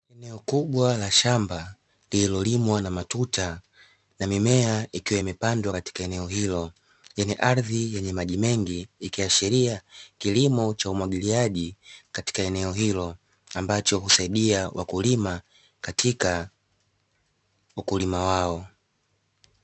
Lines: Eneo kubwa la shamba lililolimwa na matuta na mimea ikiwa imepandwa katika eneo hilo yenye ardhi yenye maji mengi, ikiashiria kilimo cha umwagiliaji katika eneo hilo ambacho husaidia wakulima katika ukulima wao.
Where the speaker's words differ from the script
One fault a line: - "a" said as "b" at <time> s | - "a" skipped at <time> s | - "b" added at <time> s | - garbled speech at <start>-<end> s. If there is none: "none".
none